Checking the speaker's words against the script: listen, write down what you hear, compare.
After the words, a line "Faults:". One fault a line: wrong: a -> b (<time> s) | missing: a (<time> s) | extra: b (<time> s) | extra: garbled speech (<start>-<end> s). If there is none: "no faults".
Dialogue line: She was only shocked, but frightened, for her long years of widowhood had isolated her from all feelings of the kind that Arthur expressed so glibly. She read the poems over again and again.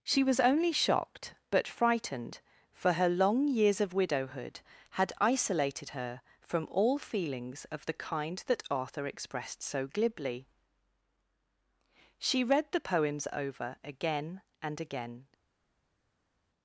She was only shocked, but frightened, for her long years of widowhood had isolated her from all feelings of the kind that Arthur expressed so glibly. She read the poems over again and again.
Faults:
no faults